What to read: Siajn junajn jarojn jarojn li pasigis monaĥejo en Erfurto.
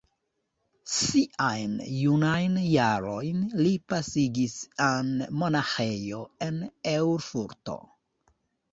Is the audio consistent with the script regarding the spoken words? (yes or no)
no